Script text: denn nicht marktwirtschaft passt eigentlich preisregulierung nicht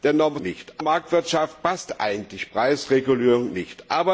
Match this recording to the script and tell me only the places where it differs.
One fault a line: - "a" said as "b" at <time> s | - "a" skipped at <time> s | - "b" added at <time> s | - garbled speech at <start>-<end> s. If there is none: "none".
none